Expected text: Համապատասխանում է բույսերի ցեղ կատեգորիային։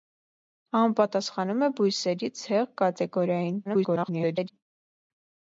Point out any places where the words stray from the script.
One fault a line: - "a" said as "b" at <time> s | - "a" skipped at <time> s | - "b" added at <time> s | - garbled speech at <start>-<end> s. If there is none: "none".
- garbled speech at 3.6-4.5 s